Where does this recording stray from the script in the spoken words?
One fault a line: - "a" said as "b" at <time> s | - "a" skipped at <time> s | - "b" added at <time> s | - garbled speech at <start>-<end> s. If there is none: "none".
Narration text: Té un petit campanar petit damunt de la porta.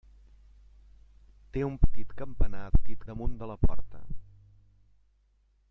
none